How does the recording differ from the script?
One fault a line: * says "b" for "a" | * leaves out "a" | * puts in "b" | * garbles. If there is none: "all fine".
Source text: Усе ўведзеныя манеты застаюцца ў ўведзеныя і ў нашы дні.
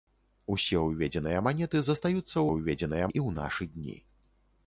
all fine